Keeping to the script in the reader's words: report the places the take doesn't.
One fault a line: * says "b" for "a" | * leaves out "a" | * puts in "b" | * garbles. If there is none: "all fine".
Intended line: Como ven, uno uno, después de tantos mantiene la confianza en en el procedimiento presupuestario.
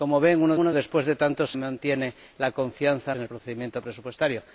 all fine